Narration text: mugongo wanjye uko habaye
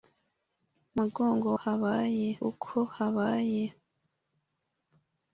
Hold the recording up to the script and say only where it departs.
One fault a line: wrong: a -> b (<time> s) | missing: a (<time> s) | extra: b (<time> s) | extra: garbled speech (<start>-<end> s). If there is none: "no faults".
wrong: wanjye -> habaye (1.6 s)